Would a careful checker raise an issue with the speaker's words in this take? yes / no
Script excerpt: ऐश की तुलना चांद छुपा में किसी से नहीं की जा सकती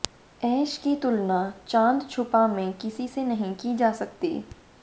no